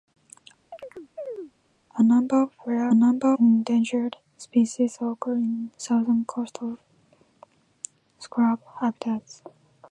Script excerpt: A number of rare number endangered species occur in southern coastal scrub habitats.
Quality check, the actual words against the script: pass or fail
pass